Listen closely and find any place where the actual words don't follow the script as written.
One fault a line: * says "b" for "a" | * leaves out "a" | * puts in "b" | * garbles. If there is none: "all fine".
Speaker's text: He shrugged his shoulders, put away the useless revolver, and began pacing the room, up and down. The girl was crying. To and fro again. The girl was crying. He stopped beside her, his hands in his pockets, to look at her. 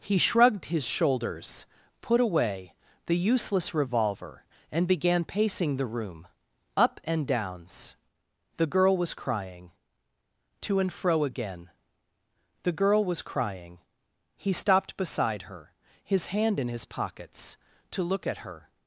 * says "downs" for "down"
* says "hand" for "hands"